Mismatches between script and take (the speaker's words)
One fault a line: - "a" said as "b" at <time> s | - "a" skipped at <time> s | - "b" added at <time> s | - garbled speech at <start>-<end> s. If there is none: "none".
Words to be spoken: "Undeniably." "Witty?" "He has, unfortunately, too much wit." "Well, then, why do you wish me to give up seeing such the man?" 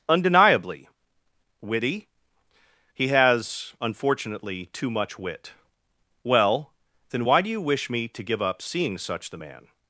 none